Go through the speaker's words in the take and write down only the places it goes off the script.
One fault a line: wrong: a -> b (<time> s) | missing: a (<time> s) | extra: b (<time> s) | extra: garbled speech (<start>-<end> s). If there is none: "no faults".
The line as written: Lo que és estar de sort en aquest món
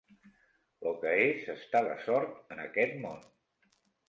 no faults